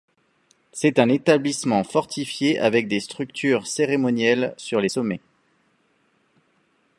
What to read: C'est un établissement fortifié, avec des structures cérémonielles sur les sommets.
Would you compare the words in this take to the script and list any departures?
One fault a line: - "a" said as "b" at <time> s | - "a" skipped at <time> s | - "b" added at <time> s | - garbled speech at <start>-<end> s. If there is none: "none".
none